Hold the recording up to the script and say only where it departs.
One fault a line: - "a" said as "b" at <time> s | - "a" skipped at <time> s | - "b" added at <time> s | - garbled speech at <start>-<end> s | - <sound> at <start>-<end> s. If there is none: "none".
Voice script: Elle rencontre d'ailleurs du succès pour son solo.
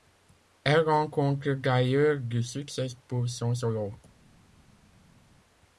none